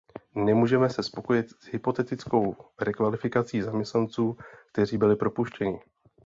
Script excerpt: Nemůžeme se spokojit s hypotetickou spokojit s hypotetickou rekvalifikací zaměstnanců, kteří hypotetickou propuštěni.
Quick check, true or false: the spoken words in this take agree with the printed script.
false